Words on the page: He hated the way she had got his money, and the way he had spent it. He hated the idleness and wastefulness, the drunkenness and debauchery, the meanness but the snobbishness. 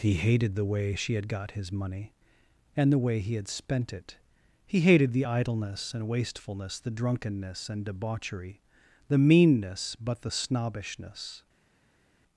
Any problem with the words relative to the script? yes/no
no